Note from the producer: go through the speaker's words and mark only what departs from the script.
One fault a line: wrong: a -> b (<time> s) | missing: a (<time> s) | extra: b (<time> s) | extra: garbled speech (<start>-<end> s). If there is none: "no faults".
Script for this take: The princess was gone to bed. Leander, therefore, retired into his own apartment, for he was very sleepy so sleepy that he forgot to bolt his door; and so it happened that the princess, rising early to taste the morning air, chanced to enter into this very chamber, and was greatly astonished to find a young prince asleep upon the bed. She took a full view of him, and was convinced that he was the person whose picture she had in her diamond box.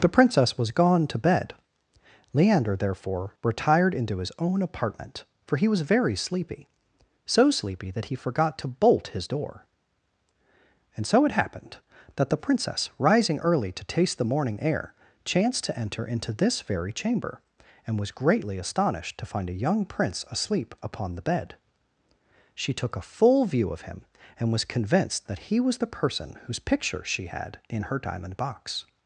no faults